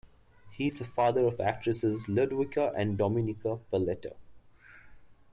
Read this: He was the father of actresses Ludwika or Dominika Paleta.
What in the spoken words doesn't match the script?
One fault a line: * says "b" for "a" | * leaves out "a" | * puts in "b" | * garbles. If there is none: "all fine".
* says "is" for "was"
* says "and" for "or"